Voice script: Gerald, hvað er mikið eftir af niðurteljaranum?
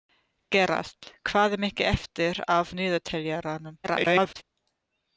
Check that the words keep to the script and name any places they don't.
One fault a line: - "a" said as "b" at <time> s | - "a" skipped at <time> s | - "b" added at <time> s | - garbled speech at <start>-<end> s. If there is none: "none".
- garbled speech at 3.8-4.4 s